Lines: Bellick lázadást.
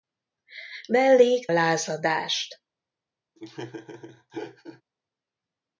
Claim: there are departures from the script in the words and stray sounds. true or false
true